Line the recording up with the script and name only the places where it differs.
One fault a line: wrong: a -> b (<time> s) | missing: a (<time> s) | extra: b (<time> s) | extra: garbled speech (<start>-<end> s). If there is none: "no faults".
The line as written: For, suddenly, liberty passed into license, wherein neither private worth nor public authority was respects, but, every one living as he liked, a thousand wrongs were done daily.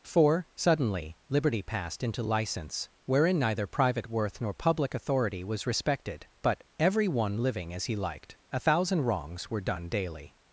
wrong: respects -> respected (5.7 s)